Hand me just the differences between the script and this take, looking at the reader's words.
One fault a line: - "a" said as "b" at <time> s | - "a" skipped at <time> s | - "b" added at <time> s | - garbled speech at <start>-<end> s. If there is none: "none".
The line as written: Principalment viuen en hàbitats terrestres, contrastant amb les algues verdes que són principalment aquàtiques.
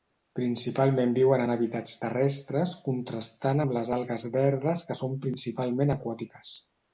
none